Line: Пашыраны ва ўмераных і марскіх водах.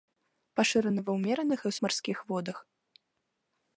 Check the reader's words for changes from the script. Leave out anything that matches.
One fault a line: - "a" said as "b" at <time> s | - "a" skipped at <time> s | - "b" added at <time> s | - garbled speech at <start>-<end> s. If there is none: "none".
none